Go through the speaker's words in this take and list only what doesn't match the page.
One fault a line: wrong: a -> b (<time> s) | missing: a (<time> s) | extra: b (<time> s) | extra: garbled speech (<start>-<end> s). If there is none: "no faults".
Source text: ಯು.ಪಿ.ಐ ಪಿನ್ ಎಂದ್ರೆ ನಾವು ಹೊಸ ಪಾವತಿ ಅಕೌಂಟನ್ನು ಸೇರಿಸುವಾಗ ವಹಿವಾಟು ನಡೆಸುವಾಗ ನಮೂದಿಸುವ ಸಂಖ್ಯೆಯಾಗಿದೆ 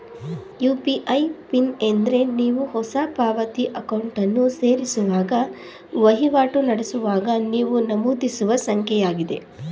wrong: ನಾವು -> ನೀವು (2.3 s)
extra: ನೀವು (7.5 s)